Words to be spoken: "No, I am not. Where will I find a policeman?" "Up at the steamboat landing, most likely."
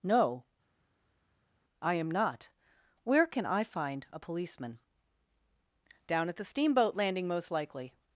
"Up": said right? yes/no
no